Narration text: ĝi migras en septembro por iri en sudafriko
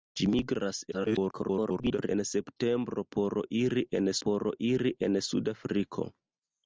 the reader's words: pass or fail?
fail